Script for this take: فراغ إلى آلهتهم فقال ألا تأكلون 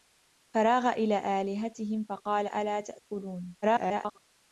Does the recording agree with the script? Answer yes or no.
no